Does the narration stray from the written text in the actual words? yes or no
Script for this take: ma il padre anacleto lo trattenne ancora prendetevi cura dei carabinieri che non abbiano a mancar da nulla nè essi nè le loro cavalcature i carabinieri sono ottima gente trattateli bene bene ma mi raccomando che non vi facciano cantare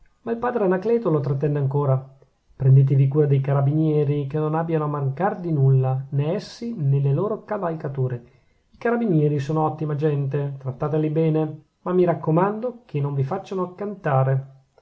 yes